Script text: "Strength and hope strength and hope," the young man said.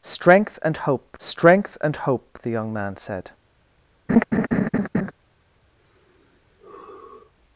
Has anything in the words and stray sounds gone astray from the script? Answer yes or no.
yes